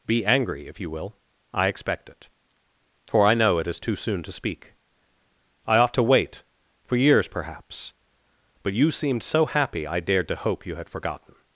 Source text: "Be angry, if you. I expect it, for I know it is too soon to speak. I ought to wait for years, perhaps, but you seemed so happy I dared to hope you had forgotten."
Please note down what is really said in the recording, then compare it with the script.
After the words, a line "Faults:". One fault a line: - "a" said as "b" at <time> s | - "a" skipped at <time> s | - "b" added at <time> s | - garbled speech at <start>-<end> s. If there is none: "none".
"Be angry, if you will. I expect it, for I know it is too soon to speak. I ought to wait for years, perhaps, but you seemed so happy I dared to hope you had forgotten."
Faults:
- "will" added at 0.9 s